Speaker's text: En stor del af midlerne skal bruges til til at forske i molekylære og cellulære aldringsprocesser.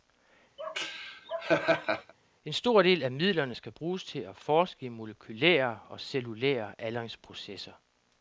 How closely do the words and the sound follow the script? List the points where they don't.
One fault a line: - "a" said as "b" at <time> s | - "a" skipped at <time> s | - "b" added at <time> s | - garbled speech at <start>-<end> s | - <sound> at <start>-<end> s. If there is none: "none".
- laugh at 0.6-2.1 s
- "til" skipped at 4.2 s